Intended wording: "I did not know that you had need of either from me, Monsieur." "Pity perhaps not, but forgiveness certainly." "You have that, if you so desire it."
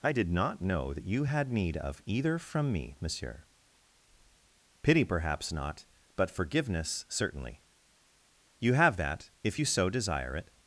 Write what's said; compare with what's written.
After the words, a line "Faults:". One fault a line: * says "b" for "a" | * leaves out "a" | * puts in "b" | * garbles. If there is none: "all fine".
"I did not know that you had need of either from me, Monsieur." "Pity perhaps not, but forgiveness certainly." "You have that, if you so desire it."
Faults:
all fine